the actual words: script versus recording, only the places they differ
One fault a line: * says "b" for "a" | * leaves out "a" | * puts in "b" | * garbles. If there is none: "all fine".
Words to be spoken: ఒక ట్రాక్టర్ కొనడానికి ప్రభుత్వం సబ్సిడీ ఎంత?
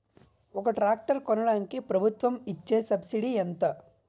* puts in "ఇచే"